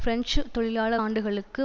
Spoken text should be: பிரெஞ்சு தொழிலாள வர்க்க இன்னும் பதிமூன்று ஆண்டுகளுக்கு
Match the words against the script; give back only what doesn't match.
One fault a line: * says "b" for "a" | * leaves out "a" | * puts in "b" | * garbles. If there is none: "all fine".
* leaves out "வர்க்க இன்னும் பதிமூன்று"